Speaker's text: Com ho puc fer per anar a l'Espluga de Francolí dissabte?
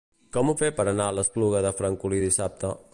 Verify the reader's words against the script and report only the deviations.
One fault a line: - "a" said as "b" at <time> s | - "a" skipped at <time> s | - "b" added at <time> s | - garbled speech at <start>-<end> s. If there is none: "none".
- "puc" skipped at 0.6 s